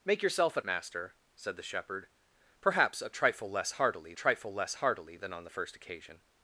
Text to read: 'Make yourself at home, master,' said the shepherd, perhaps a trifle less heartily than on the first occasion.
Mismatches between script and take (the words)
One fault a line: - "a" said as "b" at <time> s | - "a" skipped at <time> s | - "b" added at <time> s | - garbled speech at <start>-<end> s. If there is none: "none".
- "home" skipped at 0.7 s
- "trifle less heartily" added at 4.1 s